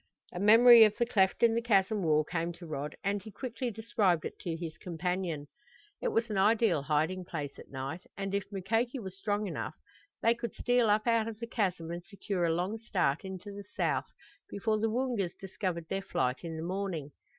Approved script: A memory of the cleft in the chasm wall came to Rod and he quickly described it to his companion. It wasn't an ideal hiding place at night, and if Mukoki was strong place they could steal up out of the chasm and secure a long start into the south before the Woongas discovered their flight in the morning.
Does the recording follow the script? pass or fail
fail